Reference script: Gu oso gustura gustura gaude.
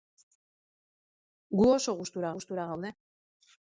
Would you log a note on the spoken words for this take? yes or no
no